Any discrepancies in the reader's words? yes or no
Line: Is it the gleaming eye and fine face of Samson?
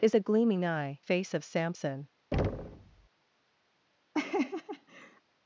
yes